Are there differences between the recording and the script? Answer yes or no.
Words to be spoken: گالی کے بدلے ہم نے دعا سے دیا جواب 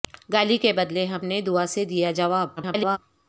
yes